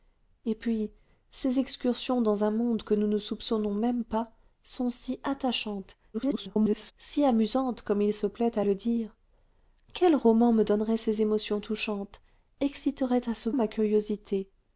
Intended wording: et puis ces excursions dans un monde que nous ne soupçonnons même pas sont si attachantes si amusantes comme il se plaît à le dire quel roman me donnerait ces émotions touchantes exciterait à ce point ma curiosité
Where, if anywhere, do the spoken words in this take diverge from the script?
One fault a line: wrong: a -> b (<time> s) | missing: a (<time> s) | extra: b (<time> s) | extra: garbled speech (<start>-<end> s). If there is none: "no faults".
extra: garbled speech (6.1-6.9 s)
missing: point (13.5 s)